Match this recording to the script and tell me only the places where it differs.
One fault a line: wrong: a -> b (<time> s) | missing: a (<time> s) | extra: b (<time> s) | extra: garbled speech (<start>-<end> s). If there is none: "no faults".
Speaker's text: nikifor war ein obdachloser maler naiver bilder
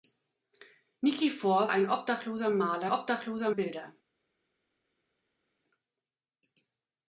missing: war (1.7 s)
wrong: naiver -> obdachloser (2.9 s)